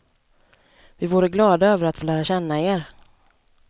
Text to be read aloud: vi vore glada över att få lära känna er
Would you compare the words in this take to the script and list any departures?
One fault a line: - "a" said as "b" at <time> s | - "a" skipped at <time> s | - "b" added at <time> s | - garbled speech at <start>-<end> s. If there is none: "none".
none